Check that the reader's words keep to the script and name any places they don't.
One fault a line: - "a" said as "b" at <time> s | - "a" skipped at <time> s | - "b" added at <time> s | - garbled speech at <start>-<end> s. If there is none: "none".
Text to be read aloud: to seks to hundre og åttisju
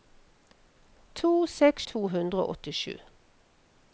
none